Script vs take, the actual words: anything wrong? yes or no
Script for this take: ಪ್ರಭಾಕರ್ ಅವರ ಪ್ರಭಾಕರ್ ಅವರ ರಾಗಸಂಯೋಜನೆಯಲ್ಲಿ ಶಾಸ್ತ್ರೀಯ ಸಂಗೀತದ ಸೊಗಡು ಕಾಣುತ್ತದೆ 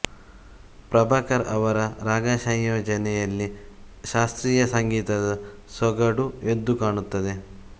yes